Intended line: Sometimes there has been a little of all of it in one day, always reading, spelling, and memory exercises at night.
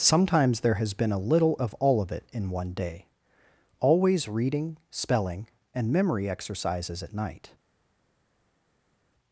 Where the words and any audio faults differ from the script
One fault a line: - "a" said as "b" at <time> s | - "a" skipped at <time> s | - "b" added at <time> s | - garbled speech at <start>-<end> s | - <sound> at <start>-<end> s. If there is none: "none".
none